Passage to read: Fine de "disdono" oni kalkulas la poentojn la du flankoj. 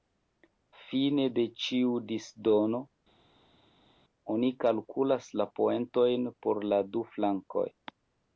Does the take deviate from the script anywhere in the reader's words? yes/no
yes